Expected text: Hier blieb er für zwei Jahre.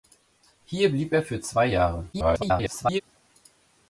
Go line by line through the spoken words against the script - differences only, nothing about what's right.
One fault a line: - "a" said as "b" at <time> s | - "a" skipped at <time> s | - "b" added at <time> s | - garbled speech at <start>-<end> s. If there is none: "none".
- garbled speech at 2.1-3.0 s